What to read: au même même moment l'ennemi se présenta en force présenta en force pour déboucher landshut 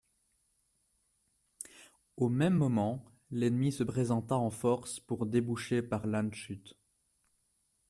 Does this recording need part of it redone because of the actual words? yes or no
yes